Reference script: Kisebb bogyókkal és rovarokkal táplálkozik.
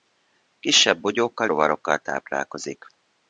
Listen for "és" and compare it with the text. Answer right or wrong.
wrong